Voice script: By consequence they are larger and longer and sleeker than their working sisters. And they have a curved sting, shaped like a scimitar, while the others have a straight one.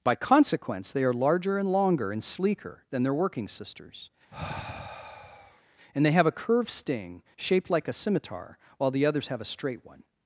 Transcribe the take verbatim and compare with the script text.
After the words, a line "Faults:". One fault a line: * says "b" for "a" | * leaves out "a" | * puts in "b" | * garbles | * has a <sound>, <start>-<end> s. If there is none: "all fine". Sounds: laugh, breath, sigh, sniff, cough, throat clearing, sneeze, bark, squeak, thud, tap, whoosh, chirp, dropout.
By consequence they are larger and longer and sleeker than their working sisters. And they have a curved sting, shaped like a scimitar, while the others have a straight one.
Faults:
* has a sigh, 4.3-5.6 s